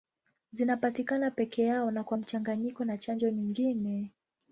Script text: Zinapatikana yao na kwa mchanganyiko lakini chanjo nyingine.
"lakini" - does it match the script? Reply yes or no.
no